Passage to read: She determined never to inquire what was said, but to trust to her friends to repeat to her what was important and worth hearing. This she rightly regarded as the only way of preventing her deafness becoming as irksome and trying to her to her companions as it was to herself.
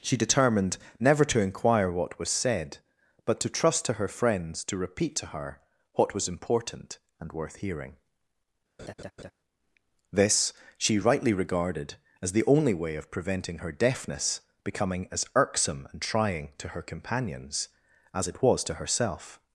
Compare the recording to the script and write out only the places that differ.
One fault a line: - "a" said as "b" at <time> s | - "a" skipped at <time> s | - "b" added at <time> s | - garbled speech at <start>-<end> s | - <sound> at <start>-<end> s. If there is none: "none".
- laugh at 8.8-9.3 s
- "to her" skipped at 16.8 s